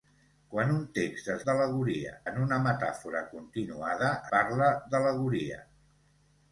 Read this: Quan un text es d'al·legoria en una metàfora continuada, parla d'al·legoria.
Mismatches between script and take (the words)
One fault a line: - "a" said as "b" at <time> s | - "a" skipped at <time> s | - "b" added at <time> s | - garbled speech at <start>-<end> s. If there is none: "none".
none